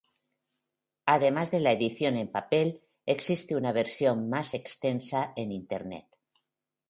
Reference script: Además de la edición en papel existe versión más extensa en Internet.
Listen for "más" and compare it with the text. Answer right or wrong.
right